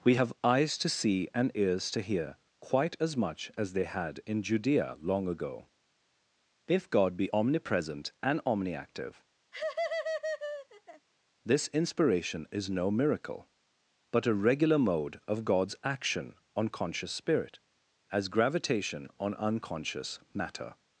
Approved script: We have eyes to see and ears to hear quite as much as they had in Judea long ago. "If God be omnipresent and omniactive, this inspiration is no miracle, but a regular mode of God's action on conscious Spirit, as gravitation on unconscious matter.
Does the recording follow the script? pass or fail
pass